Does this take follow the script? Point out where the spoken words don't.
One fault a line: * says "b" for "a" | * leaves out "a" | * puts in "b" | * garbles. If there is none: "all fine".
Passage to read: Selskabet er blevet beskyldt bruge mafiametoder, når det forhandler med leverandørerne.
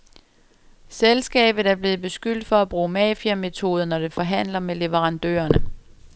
* puts in "for at"